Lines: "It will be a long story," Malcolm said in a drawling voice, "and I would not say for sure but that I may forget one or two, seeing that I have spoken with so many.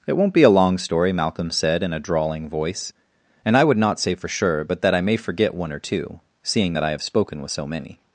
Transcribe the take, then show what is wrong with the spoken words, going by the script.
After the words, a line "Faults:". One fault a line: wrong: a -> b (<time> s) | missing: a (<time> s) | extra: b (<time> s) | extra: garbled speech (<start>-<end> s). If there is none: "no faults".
"It won't be a long story," Malcolm said in a drawling voice, "and I would not say for sure but that I may forget one or two, seeing that I have spoken with so many.
Faults:
wrong: will -> won't (0.2 s)